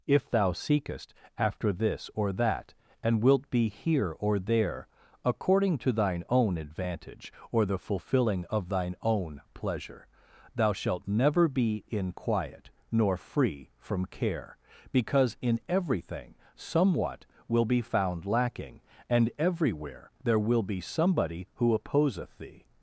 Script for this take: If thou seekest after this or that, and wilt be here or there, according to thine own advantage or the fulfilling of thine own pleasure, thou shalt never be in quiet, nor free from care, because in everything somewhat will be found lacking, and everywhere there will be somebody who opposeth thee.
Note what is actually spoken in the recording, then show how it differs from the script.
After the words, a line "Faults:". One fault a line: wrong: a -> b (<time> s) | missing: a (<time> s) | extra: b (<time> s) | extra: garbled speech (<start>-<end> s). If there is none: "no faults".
If thou seekest after this or that, and wilt be here or there, according to thine own advantage or the fulfilling of thine own pleasure, thou shalt never be in quiet, nor free from care, because in everything somewhat will be found lacking, and everywhere there will be somebody who opposeth thee.
Faults:
no faults